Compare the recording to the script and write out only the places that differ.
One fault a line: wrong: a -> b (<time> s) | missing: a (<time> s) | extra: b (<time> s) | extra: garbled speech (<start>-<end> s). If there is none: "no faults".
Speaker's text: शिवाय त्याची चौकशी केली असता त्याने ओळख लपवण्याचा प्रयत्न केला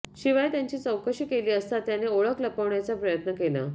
no faults